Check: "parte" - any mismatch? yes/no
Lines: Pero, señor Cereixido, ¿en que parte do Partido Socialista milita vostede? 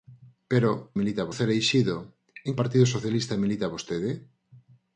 yes